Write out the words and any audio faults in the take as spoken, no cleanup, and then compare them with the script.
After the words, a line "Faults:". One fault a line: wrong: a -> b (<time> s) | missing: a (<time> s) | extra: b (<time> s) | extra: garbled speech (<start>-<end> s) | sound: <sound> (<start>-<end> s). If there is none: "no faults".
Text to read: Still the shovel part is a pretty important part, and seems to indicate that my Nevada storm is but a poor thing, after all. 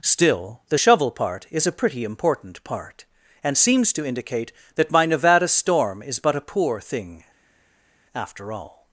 Still the shovel part is a pretty important part, and seems to indicate that my Nevada storm is but a poor thing, after all.
Faults:
no faults